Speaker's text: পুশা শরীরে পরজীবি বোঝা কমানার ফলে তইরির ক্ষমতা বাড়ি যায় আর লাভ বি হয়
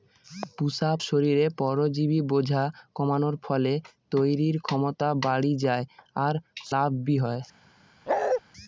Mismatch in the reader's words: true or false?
false